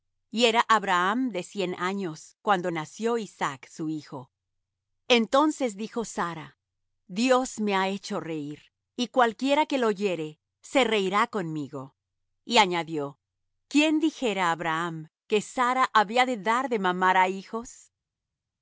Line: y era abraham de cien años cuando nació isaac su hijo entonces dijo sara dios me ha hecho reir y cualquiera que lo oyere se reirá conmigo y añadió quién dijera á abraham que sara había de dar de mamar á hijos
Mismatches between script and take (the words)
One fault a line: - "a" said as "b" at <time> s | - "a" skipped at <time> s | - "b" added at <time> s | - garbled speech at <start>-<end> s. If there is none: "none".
none